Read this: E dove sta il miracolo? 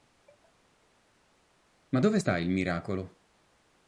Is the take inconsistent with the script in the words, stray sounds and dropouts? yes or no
yes